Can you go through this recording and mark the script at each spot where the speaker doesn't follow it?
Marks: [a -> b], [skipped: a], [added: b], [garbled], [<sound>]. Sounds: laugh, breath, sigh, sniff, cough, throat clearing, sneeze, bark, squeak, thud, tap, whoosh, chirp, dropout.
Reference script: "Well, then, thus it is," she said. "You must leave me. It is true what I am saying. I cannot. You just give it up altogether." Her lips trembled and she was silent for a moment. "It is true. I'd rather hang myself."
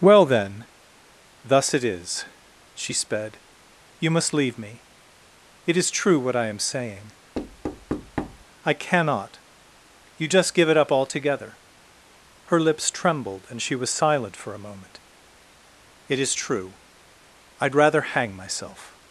"Well, then, thus it is," she [said. -> sped] "You must leave me. It is true what I am saying. [thud] I cannot. You just give it up altogether." Her lips trembled and she was silent for a moment. "It is true. I'd rather hang myself."